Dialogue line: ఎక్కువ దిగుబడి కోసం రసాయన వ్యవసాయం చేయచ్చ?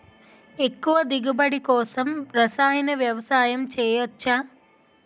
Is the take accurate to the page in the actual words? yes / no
yes